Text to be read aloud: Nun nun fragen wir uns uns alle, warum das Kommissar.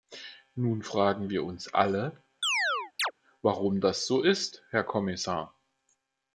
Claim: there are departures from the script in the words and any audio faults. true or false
true